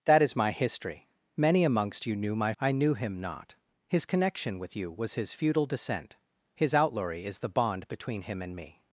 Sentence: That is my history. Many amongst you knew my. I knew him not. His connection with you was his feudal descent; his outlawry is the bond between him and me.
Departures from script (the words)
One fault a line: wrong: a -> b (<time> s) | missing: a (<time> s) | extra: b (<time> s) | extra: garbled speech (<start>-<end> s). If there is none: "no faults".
no faults